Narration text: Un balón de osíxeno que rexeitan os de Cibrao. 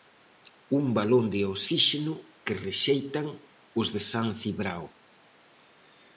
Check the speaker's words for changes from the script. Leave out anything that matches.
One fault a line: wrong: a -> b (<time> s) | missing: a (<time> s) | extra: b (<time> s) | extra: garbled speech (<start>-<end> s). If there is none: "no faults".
extra: San (4.1 s)